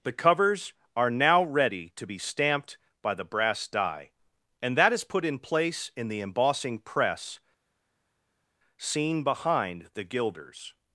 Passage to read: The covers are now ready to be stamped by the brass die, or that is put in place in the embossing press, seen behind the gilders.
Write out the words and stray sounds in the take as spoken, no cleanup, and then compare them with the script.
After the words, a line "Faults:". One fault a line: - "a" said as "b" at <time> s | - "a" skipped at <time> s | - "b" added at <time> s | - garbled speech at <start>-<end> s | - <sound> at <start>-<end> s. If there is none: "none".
The covers are now ready to be stamped by the brass die, and that is put in place in the embossing press, seen behind the gilders.
Faults:
- "or" said as "and" at 4.6 s